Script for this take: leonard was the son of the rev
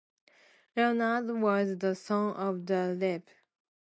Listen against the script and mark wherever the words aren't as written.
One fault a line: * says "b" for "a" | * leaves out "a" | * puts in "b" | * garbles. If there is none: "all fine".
all fine